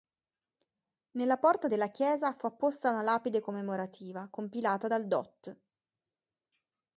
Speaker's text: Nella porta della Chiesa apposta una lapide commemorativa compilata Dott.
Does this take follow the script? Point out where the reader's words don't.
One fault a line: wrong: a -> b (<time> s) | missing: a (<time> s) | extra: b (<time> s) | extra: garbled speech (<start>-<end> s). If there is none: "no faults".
extra: fu (2.3 s)
extra: dal (4.8 s)